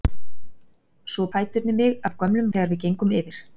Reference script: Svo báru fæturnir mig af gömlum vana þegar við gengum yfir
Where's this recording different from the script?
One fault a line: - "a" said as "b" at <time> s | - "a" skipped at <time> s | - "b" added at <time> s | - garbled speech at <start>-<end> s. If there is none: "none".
- "báru" skipped at 1.2 s
- "vana" skipped at 2.5 s